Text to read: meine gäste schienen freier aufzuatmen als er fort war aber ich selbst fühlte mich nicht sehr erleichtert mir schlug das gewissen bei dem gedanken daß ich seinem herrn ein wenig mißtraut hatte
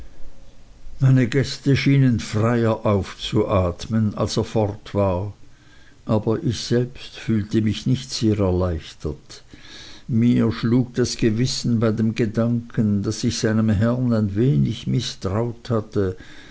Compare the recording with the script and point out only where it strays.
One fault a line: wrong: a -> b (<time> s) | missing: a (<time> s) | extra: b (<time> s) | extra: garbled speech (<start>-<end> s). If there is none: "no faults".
no faults